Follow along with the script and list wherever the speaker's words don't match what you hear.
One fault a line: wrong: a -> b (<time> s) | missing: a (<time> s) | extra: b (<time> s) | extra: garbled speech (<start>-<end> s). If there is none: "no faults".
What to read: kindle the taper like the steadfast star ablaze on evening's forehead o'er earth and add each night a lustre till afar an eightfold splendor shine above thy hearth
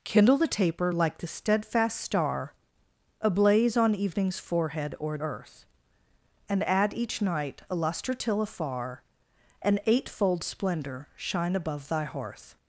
no faults